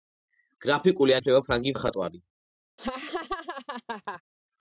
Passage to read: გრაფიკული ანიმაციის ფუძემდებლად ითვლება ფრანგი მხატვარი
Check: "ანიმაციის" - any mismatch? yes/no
yes